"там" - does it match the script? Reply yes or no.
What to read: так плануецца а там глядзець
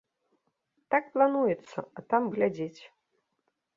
yes